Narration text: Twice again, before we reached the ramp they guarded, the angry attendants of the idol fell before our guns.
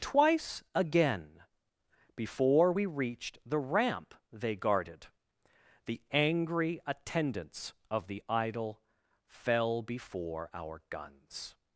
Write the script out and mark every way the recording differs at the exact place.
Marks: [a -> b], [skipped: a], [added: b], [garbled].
Twice again, before we reached the ramp they guarded, the angry attendants of the idol fell before our guns.